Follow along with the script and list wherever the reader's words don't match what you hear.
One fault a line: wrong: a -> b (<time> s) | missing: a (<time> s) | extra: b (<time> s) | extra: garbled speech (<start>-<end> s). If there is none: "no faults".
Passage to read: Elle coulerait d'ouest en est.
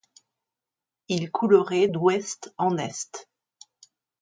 wrong: Elle -> Il (1.1 s)